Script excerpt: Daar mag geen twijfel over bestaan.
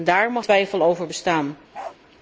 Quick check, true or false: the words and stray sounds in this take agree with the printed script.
false